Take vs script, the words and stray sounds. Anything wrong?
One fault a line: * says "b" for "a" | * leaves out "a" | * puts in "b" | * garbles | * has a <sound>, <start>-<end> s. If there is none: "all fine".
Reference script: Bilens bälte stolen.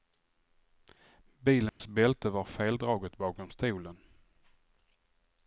* has a dropout, 1.7-1.8 s
* puts in "var feldraget bakom"